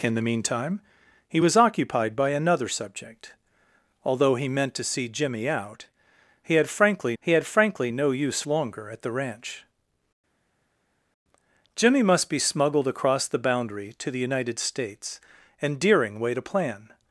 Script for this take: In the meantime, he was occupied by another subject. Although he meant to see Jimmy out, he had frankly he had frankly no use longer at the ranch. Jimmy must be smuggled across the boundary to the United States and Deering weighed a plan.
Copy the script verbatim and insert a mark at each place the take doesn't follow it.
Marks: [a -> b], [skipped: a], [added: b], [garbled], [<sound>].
In the meantime, he was occupied by another subject. Although he meant to see Jimmy out, he had frankly he had frankly no use longer at the ranch. Jimmy must be smuggled across the boundary to the United States and Deering weighed a plan.